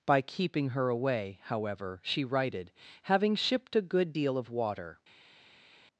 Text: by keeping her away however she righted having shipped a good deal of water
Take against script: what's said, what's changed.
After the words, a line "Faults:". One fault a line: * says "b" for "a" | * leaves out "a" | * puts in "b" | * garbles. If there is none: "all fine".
by keeping her away however she righted having shipped a good deal of water
Faults:
all fine